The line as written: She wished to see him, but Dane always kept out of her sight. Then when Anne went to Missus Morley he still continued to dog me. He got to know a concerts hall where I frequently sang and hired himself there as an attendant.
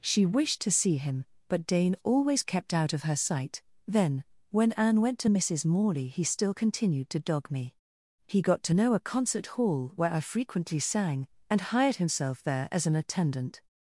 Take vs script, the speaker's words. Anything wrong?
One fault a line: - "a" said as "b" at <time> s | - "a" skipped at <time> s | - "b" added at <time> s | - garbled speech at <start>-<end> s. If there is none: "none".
- "concerts" said as "concert" at 9.0 s